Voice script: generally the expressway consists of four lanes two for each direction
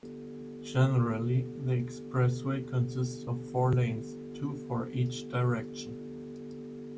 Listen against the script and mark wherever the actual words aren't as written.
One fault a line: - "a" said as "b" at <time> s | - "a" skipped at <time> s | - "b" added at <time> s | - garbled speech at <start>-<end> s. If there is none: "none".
none